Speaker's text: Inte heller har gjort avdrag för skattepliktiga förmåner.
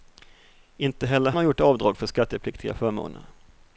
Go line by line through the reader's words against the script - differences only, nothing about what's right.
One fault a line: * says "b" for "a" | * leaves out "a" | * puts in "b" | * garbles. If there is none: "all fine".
all fine